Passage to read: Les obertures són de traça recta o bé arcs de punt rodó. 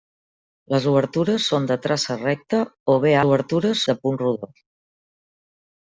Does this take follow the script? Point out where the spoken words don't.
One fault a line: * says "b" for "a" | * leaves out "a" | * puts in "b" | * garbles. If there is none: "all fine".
* says "obertures" for "arcs"